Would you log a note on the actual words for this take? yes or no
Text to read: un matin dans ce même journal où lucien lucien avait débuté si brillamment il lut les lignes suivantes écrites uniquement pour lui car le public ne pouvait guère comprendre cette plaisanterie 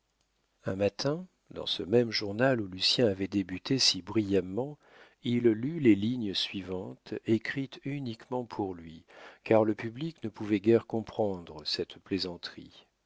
yes